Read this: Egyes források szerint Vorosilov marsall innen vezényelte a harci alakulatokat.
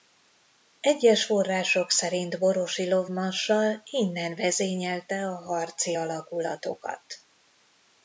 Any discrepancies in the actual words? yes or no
no